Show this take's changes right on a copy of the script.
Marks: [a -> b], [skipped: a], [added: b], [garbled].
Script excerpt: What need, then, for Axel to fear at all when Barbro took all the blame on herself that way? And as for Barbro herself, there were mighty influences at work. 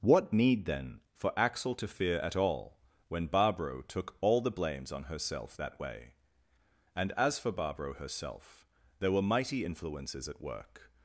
What need, then, for Axel to fear at all when Barbro took all the [blame -> blames] on herself that way? And as for Barbro herself, there were mighty influences at work.